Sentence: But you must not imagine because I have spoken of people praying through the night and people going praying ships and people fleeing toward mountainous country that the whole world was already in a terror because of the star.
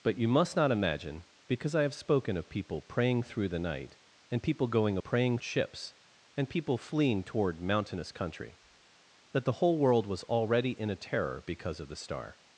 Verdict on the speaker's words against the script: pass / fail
pass